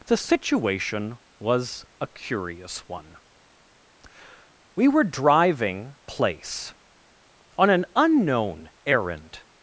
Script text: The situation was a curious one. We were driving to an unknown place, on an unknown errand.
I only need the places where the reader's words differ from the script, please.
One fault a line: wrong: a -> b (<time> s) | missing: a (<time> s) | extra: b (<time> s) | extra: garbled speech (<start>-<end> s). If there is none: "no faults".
missing: to an unknown (6.0 s)